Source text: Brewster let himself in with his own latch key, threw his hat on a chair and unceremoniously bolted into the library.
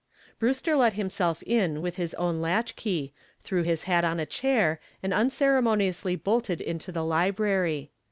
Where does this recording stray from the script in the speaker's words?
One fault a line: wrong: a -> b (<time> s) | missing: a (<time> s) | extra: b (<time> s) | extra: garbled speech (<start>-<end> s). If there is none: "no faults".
no faults